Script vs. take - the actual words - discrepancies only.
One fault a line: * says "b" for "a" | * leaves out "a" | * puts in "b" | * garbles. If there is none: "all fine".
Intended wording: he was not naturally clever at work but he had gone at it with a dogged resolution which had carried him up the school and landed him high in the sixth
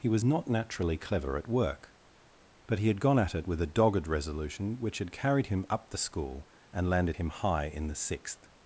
all fine